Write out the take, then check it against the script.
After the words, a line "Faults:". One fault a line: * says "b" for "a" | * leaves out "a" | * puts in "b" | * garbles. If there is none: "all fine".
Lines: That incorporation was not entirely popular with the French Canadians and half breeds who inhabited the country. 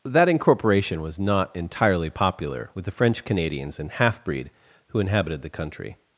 That incorporation was not entirely popular with the French Canadians and half breed who inhabited the country.
Faults:
* says "breed" for "breeds"